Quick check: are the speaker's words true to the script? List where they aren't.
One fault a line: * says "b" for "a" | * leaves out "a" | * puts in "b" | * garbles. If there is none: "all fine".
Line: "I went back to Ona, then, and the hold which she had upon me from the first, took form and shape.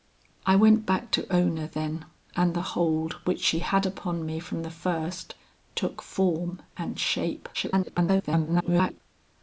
* garbles